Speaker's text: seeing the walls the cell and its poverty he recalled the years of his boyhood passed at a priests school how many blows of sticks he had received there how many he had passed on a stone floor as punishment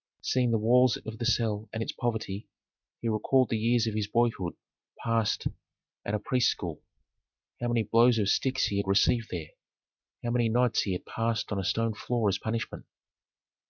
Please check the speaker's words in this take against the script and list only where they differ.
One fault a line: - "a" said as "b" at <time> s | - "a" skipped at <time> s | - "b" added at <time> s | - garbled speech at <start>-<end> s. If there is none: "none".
- "of" added at 1.1 s
- "nights" added at 10.5 s